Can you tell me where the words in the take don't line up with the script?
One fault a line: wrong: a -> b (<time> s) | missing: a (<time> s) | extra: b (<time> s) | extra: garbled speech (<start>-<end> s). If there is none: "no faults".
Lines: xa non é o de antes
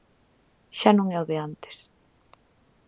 no faults